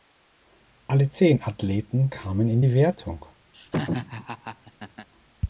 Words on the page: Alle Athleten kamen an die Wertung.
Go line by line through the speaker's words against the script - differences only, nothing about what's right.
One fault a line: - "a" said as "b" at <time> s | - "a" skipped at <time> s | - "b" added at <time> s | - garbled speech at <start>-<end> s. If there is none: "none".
- "zehn" added at 1.1 s
- "an" said as "in" at 2.5 s